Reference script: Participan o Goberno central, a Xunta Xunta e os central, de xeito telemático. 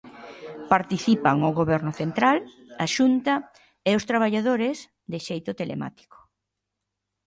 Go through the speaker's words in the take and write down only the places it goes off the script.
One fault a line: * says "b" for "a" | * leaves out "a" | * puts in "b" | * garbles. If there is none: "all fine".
* leaves out "Xunta"
* says "traballadores" for "central"